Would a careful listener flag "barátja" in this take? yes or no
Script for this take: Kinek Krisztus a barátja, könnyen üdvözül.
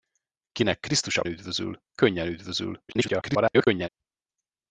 yes